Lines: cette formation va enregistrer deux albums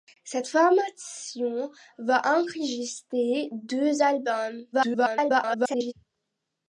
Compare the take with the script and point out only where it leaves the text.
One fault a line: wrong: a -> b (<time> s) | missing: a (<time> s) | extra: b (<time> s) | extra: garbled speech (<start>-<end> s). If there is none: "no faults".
extra: garbled speech (4.7-5.9 s)